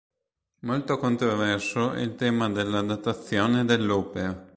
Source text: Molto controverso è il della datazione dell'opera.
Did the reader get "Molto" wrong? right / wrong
right